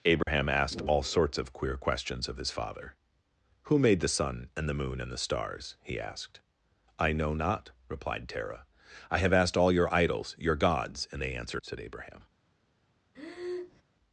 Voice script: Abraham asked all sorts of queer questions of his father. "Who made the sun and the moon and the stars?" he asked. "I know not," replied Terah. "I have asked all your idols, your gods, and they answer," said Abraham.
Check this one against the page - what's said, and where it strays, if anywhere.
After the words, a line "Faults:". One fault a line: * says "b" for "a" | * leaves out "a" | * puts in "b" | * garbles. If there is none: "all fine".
Abraham asked all sorts of queer questions of his father. "Who made the sun and the moon and the stars?" he asked. "I know not," replied Terah. "I have asked all your idols, your gods, and they answer," said Abraham.
Faults:
all fine